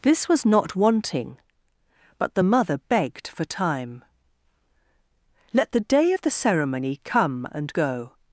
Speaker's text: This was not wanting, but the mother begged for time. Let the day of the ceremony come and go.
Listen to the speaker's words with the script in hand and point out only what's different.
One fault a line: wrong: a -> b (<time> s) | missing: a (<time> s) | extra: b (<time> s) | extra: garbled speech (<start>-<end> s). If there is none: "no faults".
no faults